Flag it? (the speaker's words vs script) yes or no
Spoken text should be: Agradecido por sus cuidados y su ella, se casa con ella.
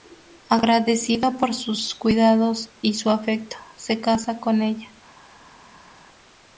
yes